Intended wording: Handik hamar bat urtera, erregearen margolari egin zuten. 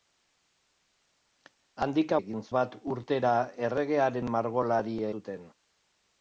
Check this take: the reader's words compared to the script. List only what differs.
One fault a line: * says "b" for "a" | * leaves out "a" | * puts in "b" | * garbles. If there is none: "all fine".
* says "egin" for "hamar"
* leaves out "egin"